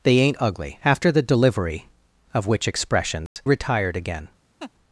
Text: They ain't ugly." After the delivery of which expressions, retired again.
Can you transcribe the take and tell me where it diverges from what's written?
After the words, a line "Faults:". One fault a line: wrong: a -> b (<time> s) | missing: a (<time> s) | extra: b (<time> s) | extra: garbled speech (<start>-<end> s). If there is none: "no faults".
They ain't ugly." After the delivery of which expressions, retired again.
Faults:
no faults